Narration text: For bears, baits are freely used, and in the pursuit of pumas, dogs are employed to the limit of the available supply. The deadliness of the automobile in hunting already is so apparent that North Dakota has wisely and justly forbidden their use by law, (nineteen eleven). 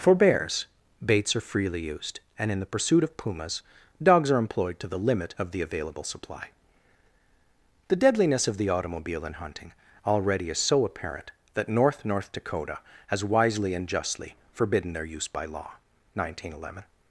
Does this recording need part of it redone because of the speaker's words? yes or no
yes